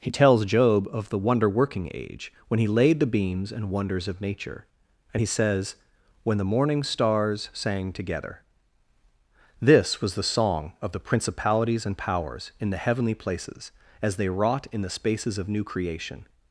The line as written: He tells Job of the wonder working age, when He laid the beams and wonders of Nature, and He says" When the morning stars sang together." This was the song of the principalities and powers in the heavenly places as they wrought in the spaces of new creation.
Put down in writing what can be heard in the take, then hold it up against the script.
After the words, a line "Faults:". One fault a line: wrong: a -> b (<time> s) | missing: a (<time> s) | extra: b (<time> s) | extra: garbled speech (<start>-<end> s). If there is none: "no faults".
He tells Job of the wonder working age, when He laid the beams and wonders of Nature, and He says" When the morning stars sang together." This was the song of the principalities and powers in the heavenly places as they wrought in the spaces of new creation.
Faults:
no faults